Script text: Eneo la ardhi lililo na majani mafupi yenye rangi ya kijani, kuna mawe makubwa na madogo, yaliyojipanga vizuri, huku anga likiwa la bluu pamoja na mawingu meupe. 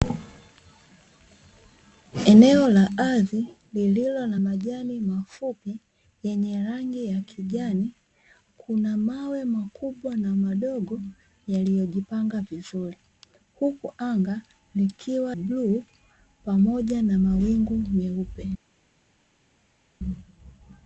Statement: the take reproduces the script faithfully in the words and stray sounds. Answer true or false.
false